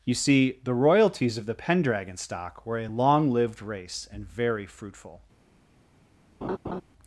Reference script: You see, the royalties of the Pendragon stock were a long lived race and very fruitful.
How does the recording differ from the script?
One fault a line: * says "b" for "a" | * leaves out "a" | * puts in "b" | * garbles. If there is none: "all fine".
all fine